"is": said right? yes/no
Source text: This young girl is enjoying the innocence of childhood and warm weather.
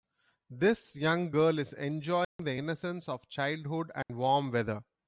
yes